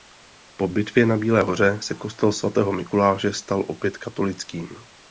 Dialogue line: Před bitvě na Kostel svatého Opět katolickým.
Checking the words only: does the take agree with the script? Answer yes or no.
no